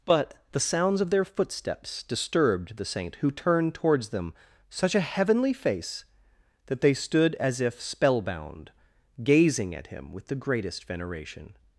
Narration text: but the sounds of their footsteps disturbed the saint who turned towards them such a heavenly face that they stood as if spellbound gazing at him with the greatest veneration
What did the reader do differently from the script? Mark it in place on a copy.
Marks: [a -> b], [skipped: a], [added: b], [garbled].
but the sounds of their footsteps disturbed the saint who turned towards them such a heavenly face that they stood as if spellbound gazing at him with the greatest veneration